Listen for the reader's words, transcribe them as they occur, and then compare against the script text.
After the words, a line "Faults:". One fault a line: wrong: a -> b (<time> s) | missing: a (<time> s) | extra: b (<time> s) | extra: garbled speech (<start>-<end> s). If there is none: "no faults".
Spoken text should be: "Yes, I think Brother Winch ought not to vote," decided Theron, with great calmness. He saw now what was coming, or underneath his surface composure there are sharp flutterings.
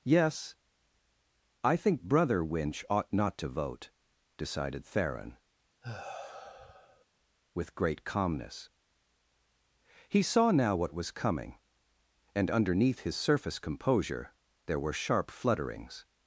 "Yes, I think Brother Winch ought not to vote," decided Theron, with great calmness. He saw now what was coming, and underneath his surface composure there were sharp flutterings.
Faults:
wrong: or -> and (12.3 s)
wrong: are -> were (14.8 s)